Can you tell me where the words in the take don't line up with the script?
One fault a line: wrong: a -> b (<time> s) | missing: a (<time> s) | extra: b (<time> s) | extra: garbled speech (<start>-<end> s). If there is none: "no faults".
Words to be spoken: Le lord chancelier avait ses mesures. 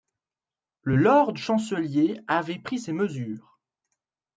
extra: pris (2.6 s)